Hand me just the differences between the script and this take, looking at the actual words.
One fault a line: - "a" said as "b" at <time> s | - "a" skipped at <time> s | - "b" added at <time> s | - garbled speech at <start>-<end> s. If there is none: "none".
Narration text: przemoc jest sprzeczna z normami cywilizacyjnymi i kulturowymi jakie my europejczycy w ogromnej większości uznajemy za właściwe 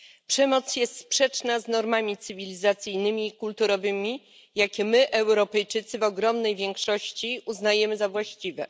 none